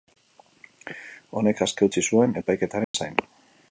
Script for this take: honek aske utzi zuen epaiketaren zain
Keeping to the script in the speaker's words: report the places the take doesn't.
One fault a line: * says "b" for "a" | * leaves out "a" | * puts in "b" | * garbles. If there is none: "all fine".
all fine